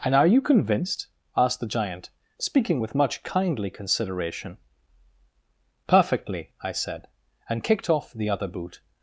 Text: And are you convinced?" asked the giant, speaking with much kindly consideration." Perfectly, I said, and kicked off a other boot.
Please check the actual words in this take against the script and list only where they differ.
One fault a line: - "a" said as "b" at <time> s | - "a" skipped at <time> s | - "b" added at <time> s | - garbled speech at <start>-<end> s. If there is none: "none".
- "a" said as "the" at 8.1 s